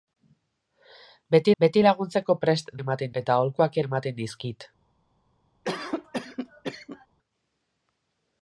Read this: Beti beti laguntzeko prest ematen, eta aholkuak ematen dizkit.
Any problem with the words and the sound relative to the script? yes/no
yes